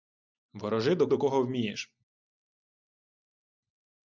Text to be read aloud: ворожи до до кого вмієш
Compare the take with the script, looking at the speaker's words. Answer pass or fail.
pass